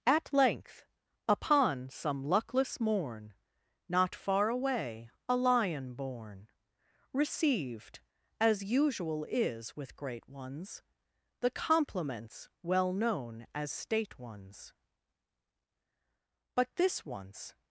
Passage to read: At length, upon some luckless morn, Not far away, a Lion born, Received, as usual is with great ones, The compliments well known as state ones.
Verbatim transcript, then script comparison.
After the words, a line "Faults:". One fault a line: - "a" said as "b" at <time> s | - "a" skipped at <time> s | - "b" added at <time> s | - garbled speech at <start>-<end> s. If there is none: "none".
At length, upon some luckless morn, Not far away, a Lion born, Received, as usual is with great ones, The compliments well known as state ones. But this once
Faults:
- "But this once" added at 16.6 s